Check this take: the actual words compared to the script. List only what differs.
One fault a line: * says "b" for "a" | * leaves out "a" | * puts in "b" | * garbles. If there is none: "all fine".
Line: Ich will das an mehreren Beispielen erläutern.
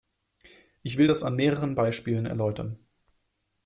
all fine